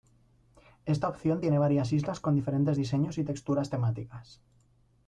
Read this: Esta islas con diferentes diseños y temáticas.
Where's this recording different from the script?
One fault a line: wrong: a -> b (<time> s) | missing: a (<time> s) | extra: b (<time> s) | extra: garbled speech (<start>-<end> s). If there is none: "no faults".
extra: opción tiene varias (1.1 s)
extra: texturas (3.2 s)